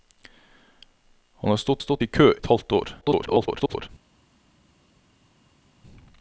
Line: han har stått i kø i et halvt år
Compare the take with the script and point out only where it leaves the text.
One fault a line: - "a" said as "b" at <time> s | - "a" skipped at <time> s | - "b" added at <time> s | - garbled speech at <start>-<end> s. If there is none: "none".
- "stått" added at 1.8 s
- "i" skipped at 2.3 s
- garbled speech at 3.0-3.9 s